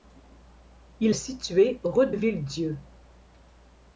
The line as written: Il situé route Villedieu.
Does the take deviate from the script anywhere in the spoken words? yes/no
no